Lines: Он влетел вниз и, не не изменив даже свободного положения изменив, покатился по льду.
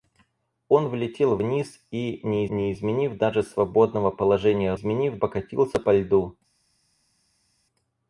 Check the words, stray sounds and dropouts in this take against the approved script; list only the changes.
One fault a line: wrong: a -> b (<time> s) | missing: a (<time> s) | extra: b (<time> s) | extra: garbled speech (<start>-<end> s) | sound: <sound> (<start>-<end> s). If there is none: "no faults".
no faults